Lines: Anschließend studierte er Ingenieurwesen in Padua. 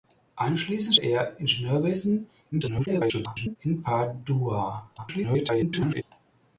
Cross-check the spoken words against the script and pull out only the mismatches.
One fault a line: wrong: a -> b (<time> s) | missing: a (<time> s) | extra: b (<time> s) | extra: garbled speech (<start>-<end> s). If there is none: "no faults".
missing: studierte (0.9 s)
extra: garbled speech (2.5-3.6 s)
extra: garbled speech (5.0-6.0 s)